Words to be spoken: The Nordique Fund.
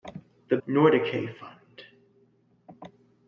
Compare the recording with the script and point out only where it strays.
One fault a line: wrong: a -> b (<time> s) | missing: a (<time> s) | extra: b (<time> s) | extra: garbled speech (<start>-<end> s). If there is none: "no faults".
no faults